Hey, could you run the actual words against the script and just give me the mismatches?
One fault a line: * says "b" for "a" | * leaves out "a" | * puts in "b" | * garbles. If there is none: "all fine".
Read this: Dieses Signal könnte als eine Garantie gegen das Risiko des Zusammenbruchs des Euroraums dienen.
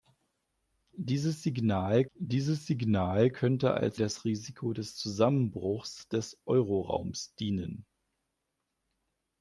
* puts in "dieses Signal"
* leaves out "eine Garantie gegen"